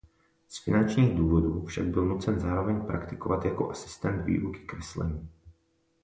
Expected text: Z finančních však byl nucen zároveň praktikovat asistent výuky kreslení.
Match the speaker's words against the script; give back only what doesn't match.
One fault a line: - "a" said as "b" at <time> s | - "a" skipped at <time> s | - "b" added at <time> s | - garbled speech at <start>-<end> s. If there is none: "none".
- "důvodů" added at 1.2 s
- "jako" added at 3.5 s